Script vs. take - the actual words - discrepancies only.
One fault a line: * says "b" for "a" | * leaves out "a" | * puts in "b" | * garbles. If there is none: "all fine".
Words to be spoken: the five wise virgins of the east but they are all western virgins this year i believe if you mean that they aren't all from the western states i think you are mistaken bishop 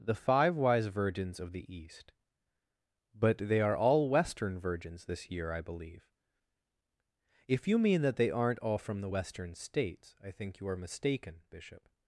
all fine